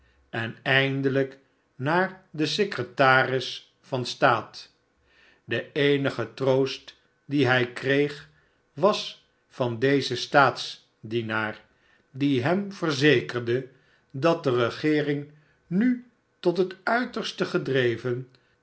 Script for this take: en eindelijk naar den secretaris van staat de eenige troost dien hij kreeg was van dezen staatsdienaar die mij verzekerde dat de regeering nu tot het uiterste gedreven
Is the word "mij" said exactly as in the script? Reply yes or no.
no